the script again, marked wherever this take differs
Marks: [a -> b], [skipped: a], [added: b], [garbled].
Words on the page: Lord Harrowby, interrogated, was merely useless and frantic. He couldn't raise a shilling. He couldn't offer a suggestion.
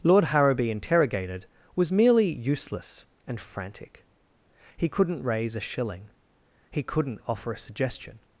Lord Harrowby, interrogated, was merely useless and frantic. He couldn't raise a shilling. He couldn't offer a suggestion.